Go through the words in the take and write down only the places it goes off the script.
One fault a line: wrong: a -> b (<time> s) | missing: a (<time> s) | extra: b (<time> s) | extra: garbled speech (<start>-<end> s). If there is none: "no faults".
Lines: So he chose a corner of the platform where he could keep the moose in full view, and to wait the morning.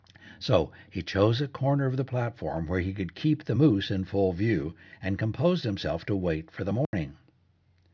extra: composed himself (5.2 s)
extra: for (6.5 s)